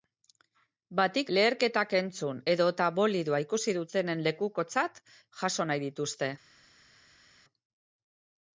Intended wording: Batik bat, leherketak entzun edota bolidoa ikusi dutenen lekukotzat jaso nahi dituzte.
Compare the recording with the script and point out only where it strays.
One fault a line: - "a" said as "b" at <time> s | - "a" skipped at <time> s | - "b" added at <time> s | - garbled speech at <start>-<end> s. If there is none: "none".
- "bat" skipped at 1.3 s